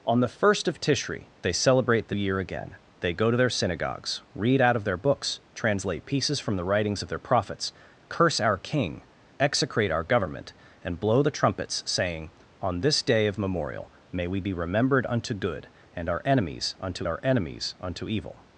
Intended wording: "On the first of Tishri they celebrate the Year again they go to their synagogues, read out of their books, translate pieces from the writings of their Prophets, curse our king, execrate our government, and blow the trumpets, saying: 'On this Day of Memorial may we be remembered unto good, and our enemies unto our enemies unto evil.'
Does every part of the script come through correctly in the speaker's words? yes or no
yes